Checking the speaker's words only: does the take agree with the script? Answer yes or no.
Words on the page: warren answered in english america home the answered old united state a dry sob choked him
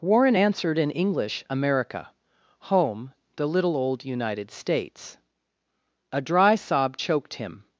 no